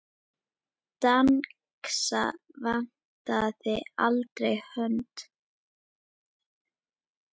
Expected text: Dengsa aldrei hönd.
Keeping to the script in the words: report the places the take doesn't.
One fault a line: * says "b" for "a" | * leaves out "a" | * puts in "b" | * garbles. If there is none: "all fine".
* puts in "vantaði"